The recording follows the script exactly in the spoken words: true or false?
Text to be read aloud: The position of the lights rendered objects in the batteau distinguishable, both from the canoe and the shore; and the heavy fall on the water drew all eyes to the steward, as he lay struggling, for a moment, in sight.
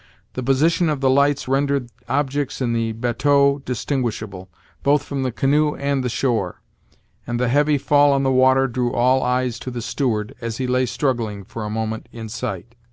true